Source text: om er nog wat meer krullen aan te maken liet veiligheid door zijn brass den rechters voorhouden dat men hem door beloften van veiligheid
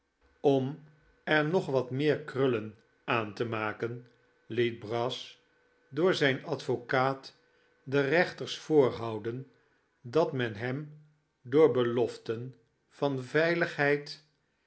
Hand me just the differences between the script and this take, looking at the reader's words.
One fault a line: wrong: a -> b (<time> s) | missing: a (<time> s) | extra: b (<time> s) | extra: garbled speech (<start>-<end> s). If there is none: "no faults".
wrong: veiligheid -> brass (4.8 s)
wrong: brass -> advocaat (6.5 s)